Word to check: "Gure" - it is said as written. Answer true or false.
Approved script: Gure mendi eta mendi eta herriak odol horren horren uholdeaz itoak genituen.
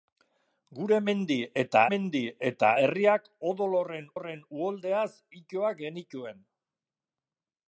true